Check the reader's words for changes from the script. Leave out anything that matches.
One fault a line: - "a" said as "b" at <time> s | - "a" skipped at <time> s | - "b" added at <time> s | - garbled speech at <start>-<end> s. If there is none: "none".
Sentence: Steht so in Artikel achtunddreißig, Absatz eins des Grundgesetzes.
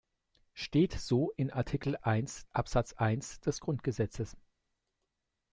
- "achtunddreißig" said as "eins" at 2.0 s